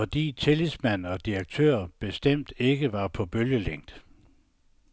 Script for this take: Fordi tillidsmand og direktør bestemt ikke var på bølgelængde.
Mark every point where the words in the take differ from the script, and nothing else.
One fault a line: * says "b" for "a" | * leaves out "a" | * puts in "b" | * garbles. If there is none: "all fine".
all fine